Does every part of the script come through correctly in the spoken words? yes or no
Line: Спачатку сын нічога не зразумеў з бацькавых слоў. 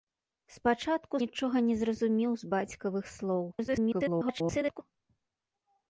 no